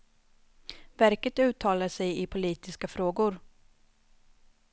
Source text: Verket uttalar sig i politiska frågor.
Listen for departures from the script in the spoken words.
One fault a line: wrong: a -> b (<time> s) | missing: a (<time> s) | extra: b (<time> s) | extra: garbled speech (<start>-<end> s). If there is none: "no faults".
no faults